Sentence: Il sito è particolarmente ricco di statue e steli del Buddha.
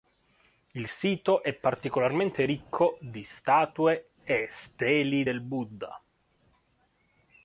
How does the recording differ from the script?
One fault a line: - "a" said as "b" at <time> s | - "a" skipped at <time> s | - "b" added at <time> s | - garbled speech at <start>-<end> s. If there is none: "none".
none